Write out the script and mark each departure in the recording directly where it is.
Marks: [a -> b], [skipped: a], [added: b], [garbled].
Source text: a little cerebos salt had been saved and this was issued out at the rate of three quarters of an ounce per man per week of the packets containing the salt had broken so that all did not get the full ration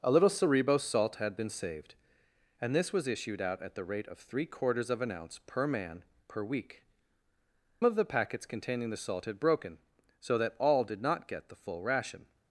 a little cerebos salt had been saved and this was issued out at the rate of three quarters of an ounce per man per week of the packets containing the salt had broken so that all did not get the full ration